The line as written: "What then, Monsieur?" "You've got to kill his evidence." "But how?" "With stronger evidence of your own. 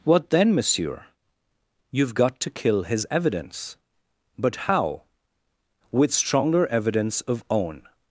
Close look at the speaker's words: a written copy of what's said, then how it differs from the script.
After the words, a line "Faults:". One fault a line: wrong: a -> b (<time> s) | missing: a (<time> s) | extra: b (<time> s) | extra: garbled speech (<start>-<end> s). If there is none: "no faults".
"What then, Monsieur?" "You've got to kill his evidence." "But how?" "With stronger evidence of own.
Faults:
missing: your (7.4 s)